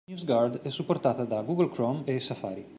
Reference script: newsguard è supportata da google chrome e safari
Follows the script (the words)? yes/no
yes